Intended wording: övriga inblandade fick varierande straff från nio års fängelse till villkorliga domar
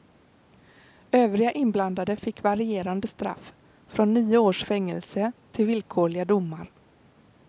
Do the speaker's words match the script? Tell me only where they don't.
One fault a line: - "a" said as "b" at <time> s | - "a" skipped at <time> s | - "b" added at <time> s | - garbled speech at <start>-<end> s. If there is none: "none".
none